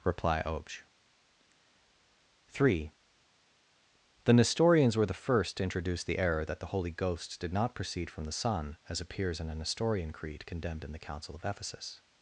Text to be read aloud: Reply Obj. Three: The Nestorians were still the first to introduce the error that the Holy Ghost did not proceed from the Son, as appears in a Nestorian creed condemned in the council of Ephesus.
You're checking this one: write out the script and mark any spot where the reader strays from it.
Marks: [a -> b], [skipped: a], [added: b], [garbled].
Reply Obj. Three: The Nestorians were [skipped: still] the first to introduce the error that the Holy Ghost did not proceed from the Son, as appears in a Nestorian creed condemned in the council of Ephesus.